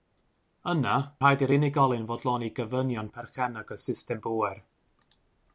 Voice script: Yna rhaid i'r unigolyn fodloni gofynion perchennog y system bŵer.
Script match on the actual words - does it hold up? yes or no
yes